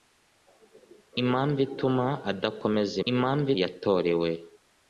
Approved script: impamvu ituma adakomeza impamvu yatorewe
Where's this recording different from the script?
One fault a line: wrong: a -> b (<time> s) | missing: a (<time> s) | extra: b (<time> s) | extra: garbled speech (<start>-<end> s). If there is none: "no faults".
no faults